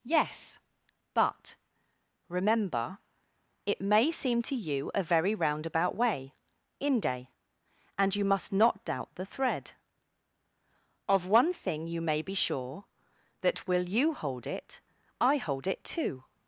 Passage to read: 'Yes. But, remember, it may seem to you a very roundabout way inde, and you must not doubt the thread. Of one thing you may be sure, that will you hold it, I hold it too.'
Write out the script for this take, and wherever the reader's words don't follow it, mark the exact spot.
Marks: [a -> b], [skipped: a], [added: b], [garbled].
'Yes. But, remember, it may seem to you a very roundabout way inde, and you must not doubt the thread. Of one thing you may be sure, that will you hold it, I hold it too.'